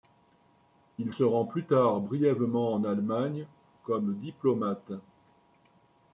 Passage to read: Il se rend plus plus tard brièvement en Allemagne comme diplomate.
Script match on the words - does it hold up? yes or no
no